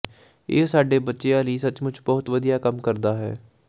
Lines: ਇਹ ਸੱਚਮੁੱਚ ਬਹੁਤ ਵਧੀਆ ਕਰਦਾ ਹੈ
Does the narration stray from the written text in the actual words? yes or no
yes